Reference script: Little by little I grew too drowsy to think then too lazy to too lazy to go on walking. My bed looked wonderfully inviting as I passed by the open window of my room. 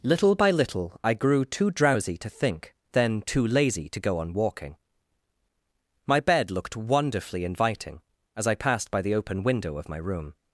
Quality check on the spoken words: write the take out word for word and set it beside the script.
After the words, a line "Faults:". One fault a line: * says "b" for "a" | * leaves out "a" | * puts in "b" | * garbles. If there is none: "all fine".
Little by little I grew too drowsy to think then too lazy to go on walking. My bed looked wonderfully inviting as I passed by the open window of my room.
Faults:
* leaves out "too lazy to"